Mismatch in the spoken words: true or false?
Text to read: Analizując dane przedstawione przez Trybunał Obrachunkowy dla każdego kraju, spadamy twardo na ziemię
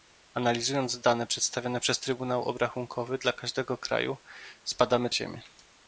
true